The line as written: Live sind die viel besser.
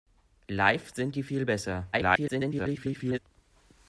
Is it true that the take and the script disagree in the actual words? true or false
true